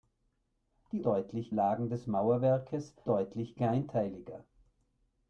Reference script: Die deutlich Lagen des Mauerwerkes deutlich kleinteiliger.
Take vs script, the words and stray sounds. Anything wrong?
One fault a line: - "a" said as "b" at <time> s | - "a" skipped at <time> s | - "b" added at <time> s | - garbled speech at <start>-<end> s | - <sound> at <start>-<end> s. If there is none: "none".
none